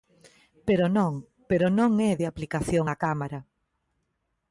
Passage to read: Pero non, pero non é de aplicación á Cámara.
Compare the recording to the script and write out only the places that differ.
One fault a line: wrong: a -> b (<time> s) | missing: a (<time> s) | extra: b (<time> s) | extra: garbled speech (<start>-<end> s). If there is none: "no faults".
no faults